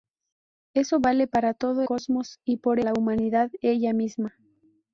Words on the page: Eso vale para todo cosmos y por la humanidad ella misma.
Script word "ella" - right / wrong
right